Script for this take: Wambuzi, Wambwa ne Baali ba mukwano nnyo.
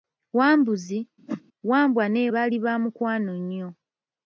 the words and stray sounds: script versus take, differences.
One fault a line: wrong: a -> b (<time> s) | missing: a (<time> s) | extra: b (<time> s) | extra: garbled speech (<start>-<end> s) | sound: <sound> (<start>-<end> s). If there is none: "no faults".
sound: whoosh (1.3-1.4 s)